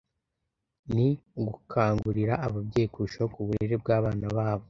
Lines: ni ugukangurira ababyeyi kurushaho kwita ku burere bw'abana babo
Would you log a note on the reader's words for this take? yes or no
yes